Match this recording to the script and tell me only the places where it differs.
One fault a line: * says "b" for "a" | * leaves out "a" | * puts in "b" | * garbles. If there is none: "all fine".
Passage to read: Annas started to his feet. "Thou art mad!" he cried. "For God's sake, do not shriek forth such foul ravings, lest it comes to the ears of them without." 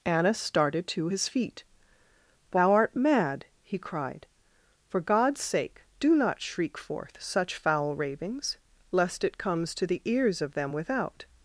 all fine